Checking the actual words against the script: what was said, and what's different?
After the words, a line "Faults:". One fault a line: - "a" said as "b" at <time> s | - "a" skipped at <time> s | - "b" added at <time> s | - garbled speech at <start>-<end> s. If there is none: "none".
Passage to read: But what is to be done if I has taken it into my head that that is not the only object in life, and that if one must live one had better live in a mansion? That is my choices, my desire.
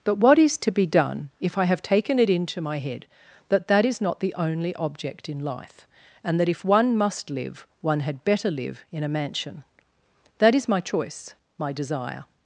But what is to be done if I have taken it into my head that that is not the only object in life, and that if one must live one had better live in a mansion? That is my choice, my desire.
Faults:
- "has" said as "have" at 1.6 s
- "choices" said as "choice" at 10.8 s